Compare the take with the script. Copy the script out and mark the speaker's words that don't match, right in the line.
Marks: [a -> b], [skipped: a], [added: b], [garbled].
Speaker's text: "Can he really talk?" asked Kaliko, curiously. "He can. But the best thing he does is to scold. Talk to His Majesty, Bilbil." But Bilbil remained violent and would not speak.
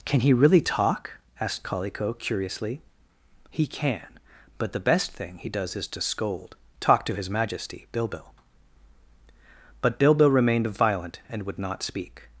"Can he really talk?" asked Kaliko, curiously. "He can. But the best thing he does is to scold. Talk to His Majesty, Bilbil." But Bilbil remained violent and would not speak.